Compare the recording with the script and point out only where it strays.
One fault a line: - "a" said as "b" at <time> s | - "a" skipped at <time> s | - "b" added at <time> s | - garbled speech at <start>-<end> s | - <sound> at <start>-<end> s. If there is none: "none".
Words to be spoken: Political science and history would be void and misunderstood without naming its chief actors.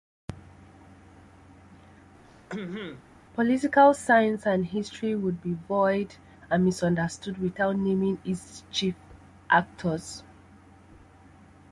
- throat clearing at 2.2-3.0 s